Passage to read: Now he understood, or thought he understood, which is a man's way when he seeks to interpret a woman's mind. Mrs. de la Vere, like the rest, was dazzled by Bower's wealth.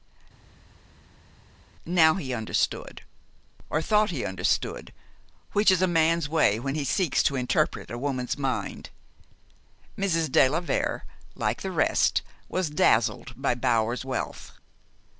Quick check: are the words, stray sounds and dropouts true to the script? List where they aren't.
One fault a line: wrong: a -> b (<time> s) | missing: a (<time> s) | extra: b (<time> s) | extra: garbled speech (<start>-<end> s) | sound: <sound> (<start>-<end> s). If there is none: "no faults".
no faults